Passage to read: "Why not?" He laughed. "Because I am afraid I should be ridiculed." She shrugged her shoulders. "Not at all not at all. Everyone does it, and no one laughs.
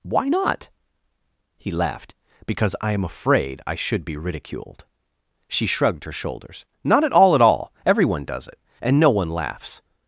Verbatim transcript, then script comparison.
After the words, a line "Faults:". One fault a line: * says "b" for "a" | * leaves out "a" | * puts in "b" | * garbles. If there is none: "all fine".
"Why not?" He laughed. "Because I am afraid I should be ridiculed." She shrugged her shoulders. "Not at all at all. Everyone does it, and no one laughs.
Faults:
* leaves out "not"